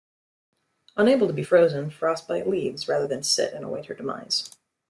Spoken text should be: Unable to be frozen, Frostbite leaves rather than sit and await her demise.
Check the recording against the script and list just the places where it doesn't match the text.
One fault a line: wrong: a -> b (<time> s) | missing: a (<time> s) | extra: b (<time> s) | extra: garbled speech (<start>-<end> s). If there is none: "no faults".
no faults